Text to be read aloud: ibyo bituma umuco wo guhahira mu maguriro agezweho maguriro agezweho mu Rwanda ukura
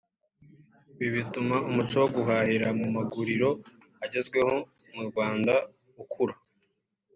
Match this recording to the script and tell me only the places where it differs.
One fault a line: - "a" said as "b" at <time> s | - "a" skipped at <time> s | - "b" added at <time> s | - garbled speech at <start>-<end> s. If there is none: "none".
- "ibyo" said as "ibi" at 1.0 s
- "maguriro agezweho" skipped at 4.5 s